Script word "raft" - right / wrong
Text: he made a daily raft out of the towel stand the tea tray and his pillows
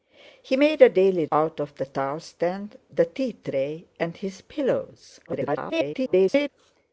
wrong